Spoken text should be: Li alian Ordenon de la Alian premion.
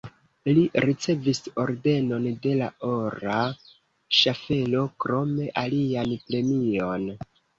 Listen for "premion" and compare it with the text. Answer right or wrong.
right